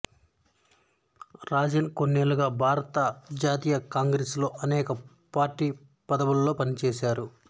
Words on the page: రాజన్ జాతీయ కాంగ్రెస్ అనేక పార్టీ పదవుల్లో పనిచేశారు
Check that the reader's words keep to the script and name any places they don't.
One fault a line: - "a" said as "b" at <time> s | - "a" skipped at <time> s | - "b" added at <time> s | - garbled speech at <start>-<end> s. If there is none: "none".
- "కొన్నేళ్లుగా భారత" added at 1.9 s
- "లో" added at 4.4 s